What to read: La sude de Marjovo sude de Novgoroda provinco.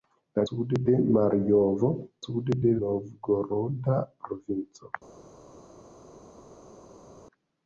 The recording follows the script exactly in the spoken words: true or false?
true